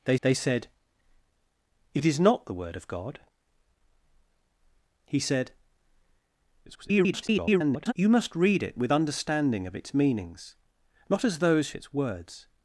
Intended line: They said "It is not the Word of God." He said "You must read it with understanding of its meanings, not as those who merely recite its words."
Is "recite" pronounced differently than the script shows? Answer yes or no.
yes